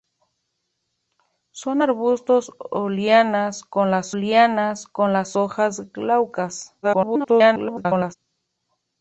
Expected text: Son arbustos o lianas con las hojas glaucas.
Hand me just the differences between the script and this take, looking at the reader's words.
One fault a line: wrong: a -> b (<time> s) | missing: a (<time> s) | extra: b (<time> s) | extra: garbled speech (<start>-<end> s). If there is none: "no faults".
extra: lianas con las (4.1 s)
extra: garbled speech (6.8-8.2 s)